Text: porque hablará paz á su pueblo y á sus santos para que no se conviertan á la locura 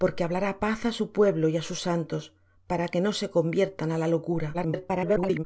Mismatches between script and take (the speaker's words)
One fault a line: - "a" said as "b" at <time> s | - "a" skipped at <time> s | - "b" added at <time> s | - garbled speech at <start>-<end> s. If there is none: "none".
- garbled speech at 4.5-5.4 s